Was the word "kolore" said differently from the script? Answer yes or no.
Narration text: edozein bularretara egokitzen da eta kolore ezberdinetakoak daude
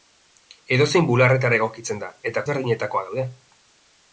yes